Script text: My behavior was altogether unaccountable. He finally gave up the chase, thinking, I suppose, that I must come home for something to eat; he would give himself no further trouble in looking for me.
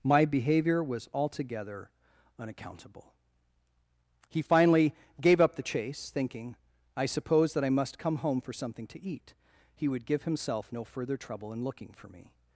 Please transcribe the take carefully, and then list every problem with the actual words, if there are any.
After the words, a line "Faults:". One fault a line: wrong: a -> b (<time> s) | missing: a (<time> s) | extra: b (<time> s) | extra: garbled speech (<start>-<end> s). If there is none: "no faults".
My behavior was altogether unaccountable. He finally gave up the chase, thinking, I suppose, that I must come home for something to eat; he would give himself no further trouble in looking for me.
Faults:
no faults